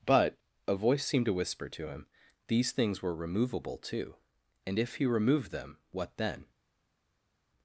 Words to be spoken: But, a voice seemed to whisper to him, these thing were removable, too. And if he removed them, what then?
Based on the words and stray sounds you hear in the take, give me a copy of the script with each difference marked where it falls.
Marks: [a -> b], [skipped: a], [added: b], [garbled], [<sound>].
But, a voice seemed to whisper to him, these [thing -> things] were removable, too. And if he removed them, what then?